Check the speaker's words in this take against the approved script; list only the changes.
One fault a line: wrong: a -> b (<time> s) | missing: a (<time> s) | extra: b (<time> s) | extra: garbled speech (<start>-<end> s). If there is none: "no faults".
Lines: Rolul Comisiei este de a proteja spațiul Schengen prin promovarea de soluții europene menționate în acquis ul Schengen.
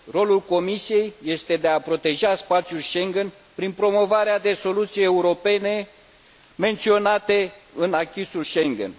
no faults